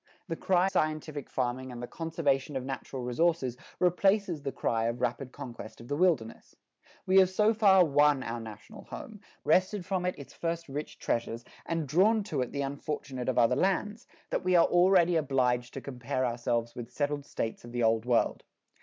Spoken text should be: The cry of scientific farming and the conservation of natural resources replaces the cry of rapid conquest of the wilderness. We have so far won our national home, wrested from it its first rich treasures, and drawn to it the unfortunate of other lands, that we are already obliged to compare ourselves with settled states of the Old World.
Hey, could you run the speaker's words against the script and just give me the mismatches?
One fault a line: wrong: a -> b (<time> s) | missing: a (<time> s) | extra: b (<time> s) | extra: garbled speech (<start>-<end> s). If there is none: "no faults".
missing: of (0.7 s)